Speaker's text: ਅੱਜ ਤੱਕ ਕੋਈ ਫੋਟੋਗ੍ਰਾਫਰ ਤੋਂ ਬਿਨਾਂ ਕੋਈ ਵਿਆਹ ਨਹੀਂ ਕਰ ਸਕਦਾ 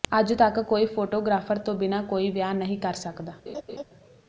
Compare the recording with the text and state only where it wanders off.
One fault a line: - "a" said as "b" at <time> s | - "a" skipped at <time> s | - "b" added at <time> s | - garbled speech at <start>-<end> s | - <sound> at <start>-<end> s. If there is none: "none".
- laugh at 3.5-3.8 s